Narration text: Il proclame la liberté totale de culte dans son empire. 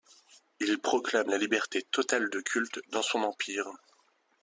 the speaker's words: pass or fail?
pass